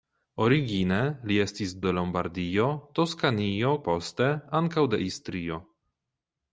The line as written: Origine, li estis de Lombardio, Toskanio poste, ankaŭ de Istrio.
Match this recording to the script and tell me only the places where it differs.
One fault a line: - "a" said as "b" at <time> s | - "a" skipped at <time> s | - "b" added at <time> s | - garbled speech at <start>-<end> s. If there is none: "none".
none